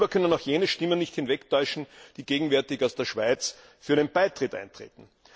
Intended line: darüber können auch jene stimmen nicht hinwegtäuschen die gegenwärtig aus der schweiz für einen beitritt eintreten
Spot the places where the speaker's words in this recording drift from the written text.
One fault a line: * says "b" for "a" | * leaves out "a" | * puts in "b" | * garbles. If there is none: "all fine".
all fine